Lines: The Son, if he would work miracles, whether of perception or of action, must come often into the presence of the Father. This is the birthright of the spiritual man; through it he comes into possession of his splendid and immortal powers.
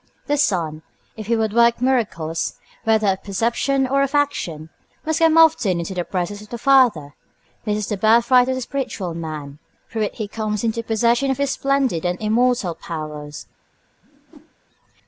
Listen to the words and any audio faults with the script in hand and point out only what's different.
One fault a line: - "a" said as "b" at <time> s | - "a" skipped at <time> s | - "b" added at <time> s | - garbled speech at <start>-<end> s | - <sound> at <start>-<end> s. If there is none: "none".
- whoosh at 14.0-14.5 s